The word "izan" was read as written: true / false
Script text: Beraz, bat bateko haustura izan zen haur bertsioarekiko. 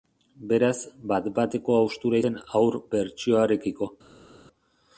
false